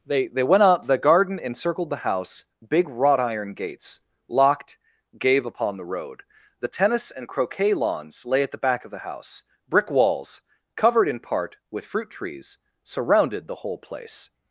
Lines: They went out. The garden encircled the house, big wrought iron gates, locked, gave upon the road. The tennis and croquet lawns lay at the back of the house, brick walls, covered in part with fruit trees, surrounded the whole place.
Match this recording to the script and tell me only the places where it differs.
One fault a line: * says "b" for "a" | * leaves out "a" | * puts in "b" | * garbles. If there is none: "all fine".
* puts in "they"